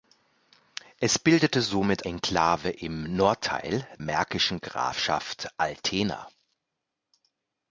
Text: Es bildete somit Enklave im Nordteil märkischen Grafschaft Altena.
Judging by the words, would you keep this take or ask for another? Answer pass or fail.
pass